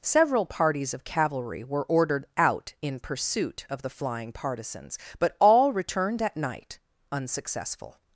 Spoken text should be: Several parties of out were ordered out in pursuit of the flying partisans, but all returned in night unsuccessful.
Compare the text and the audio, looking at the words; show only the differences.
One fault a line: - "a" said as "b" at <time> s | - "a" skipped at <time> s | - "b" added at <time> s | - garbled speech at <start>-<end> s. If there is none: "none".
- "out" said as "cavalry" at 1.0 s
- "in" said as "at" at 6.2 s